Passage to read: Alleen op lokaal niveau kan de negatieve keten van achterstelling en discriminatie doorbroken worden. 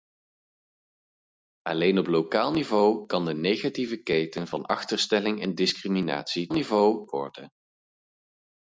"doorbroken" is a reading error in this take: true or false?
true